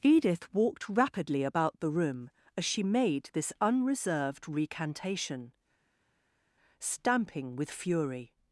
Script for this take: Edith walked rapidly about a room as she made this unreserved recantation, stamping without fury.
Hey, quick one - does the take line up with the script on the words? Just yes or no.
no